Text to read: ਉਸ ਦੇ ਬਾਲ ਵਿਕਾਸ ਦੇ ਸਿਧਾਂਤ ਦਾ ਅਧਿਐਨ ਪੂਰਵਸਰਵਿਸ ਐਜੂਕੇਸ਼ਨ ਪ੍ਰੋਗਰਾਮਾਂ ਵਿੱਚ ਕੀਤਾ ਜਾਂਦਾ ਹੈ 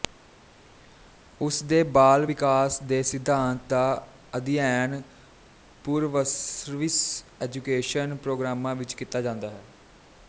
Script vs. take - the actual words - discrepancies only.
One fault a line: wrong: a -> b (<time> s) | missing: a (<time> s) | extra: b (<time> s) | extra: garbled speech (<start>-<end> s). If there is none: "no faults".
no faults